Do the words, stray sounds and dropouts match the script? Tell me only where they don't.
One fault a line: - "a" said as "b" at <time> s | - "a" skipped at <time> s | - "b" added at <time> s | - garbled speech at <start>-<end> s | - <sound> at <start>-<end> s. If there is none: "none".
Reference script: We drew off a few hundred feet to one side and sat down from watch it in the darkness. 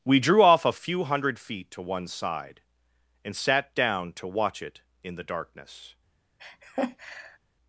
- "from" said as "to" at 4.1 s
- laugh at 6.4-7.4 s